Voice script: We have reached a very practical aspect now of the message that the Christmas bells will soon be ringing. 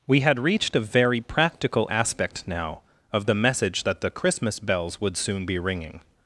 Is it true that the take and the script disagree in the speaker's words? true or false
true